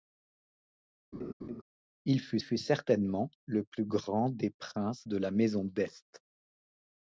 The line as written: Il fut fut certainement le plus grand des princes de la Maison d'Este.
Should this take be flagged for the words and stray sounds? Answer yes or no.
yes